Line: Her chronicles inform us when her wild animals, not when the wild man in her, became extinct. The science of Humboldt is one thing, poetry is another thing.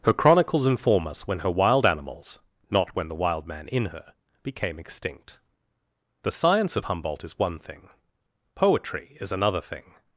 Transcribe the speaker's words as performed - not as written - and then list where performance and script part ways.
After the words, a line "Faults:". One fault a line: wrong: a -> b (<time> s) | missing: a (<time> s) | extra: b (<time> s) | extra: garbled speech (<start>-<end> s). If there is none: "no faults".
Her chronicles inform us when her wild animals, not when the wild man in her, became extinct. The science of Humboldt is one thing, poetry is another thing.
Faults:
no faults